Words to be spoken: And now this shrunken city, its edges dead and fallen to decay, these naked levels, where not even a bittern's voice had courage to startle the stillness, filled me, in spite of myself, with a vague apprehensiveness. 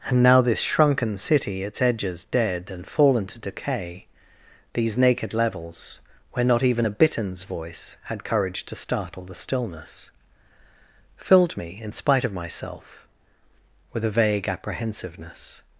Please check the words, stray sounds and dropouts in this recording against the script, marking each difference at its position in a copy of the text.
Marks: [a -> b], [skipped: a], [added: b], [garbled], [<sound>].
And now this shrunken city, its edges dead and fallen to decay, these naked levels, where not even a bittern's voice had courage to startle the stillness, filled me, in spite of myself, with a vague apprehensiveness.